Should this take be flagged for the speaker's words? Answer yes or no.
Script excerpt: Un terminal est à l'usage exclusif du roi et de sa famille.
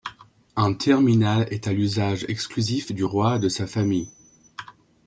no